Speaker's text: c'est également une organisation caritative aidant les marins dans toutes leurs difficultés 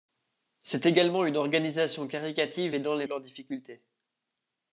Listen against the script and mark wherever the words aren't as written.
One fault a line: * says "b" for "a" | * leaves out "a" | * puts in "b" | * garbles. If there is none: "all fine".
* leaves out "marins dans toutes"